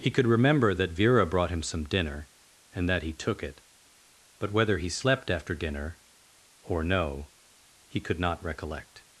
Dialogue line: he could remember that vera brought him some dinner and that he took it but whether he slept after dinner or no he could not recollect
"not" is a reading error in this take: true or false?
false